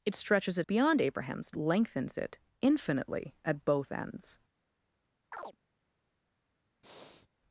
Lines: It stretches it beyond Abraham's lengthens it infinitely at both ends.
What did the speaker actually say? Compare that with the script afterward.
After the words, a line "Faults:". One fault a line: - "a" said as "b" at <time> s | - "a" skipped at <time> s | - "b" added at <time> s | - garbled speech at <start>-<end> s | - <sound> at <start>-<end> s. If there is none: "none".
It stretches it beyond Abraham's lengthens it infinitely at both ends.
Faults:
- chirp at 5.3-5.6 s
- breath at 6.8-7.3 s